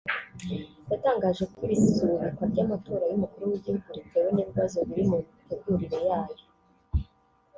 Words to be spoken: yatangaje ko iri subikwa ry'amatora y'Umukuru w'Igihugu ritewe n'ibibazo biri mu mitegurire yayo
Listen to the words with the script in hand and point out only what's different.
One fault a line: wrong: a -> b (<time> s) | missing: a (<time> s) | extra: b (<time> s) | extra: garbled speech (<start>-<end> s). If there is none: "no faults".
no faults